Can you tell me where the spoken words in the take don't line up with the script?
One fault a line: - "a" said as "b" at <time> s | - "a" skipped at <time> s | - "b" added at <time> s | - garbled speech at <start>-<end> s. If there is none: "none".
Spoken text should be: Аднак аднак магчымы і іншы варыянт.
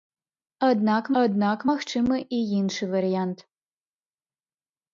none